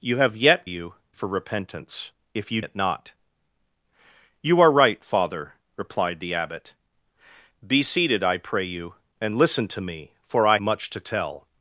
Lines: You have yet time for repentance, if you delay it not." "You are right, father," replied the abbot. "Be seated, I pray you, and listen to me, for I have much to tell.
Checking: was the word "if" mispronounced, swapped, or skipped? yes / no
no